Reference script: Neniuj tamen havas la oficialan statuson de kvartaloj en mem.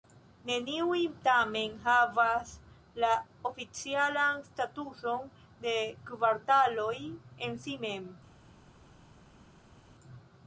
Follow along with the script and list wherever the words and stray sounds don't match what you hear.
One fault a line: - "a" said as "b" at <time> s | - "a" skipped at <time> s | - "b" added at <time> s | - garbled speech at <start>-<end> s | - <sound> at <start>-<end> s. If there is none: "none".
- "si" added at 7.7 s